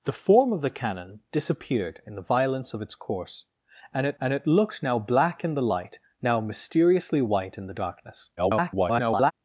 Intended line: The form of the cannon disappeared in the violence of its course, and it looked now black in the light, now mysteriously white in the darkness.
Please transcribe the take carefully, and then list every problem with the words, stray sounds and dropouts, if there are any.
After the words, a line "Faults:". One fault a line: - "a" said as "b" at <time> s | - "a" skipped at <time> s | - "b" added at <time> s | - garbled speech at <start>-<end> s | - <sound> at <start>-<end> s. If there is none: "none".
The form of the cannon disappeared in the violence of its course, and it and it looked now black in the light, now mysteriously white in the darkness. [garbled]
Faults:
- "and it" added at 4.2 s
- garbled speech at 8.4-9.3 s